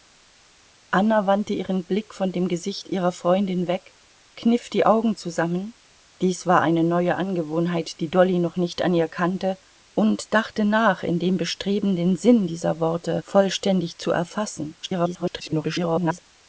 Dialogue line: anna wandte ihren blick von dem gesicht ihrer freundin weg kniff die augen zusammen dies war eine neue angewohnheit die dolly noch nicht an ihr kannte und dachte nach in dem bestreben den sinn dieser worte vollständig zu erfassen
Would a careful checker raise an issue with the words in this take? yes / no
yes